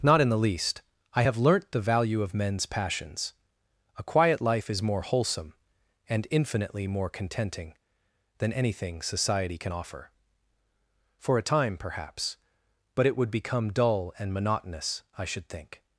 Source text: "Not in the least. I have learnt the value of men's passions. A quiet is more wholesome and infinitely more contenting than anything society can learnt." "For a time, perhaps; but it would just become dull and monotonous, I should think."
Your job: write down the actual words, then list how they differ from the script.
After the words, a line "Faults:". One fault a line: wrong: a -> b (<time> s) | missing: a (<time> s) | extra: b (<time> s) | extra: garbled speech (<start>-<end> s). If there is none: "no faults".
"Not in the least. I have learnt the value of men's passions. A quiet life is more wholesome and infinitely more contenting than anything society can offer." "For a time, perhaps; but it would become dull and monotonous, I should think."
Faults:
extra: life (4.4 s)
wrong: learnt -> offer (9.7 s)
missing: just (13.3 s)